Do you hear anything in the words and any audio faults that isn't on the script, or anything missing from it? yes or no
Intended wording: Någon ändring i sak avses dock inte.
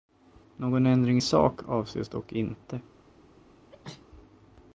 yes